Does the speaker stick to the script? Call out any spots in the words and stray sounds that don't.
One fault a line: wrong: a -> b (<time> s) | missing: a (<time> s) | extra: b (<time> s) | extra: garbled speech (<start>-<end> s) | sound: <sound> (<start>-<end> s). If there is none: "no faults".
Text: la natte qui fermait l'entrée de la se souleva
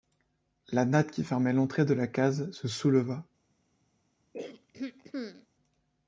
extra: case (2.1 s)
sound: throat clearing (4.3-5.5 s)